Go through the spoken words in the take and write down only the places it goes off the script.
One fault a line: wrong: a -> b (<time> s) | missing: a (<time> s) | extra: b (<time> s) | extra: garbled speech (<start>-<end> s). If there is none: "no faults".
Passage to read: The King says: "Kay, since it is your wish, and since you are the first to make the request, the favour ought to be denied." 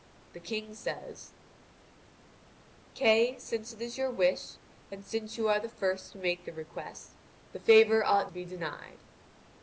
no faults